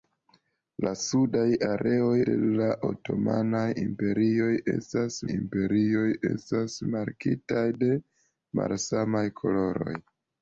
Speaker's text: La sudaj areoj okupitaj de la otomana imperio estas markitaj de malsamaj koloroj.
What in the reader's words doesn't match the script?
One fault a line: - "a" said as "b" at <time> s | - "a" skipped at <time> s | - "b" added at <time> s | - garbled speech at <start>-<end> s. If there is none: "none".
- "okupitaj" skipped at 2.1 s
- "imperio estas" added at 5.3 s